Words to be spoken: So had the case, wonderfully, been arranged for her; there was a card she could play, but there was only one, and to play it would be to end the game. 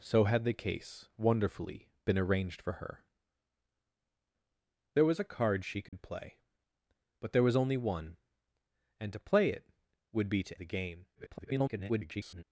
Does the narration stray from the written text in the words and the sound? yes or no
yes